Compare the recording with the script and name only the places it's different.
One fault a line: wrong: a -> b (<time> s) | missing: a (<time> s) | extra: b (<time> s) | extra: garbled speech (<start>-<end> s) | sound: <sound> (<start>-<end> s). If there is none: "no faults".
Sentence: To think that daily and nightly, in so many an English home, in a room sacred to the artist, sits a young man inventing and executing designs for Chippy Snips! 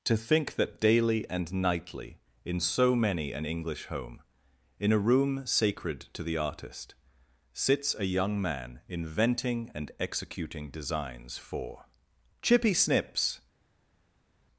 no faults